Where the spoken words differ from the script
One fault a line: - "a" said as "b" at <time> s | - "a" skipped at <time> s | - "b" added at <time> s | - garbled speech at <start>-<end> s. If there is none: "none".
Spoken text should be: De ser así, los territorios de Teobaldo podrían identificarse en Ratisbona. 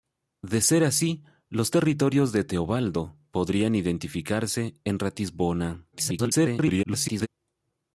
- garbled speech at 5.9-7.3 s